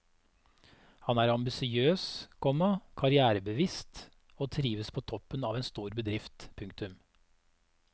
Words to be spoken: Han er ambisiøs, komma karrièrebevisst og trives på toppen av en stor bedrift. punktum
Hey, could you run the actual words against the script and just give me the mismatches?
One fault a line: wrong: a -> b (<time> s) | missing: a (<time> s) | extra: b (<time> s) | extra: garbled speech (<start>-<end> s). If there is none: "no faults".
no faults